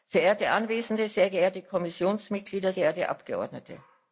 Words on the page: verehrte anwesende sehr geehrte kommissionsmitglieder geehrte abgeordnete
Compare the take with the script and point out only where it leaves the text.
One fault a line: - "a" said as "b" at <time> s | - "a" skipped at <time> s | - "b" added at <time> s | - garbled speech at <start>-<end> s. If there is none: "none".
none